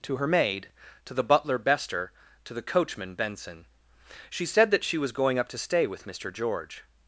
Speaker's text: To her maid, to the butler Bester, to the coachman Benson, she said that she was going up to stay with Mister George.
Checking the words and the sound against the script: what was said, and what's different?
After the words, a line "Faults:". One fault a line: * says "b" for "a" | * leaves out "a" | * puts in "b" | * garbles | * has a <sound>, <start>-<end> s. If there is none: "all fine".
To her maid, to the butler Bester, to the coachman Benson, she said that she was going up to stay with Mister George.
Faults:
all fine